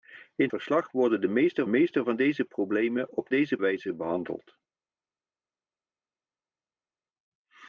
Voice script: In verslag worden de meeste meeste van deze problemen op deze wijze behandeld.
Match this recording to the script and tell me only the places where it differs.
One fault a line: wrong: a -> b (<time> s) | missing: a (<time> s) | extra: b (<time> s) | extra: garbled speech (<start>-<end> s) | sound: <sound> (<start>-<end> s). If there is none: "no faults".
no faults